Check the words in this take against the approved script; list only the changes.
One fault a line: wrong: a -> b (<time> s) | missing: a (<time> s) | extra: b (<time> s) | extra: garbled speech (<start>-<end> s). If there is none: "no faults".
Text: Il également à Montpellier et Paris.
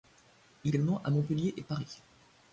no faults